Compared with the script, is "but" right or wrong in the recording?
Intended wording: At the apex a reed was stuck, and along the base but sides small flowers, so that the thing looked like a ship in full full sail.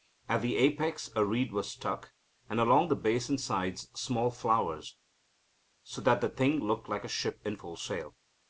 wrong